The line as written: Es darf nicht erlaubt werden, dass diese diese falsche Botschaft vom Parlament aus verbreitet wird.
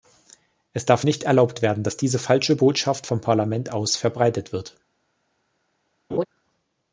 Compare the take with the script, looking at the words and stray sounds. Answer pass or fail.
fail